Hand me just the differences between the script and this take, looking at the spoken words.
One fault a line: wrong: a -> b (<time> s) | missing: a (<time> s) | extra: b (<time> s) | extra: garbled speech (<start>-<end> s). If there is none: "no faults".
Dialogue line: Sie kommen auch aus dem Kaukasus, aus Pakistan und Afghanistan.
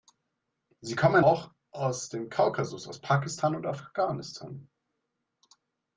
no faults